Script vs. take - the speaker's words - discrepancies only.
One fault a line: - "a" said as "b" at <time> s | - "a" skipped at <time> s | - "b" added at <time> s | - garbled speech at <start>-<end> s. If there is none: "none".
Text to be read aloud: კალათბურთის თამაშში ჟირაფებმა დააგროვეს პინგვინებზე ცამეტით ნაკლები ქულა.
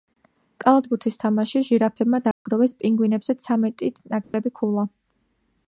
none